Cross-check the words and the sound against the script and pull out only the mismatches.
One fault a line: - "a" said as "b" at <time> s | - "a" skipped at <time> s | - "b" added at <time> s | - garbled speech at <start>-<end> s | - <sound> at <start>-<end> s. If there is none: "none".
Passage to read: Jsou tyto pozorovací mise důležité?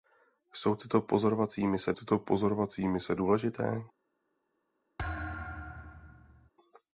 - "tyto pozorovací mise" added at 1.9 s
- thud at 5.0-6.5 s